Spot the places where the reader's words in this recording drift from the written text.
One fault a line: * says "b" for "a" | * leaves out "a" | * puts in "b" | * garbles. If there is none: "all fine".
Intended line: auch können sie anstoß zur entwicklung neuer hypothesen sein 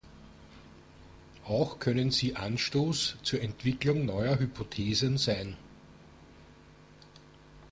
all fine